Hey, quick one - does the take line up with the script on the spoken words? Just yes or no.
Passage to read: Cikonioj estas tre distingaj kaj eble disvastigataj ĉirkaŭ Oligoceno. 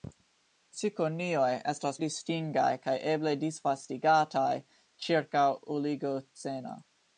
no